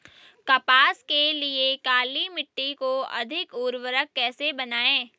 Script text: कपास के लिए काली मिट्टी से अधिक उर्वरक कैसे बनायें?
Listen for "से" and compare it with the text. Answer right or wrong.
wrong